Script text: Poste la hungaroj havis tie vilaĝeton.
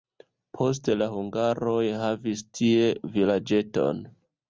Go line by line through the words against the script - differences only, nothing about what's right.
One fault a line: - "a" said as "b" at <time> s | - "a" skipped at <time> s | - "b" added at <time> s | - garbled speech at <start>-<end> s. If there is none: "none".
none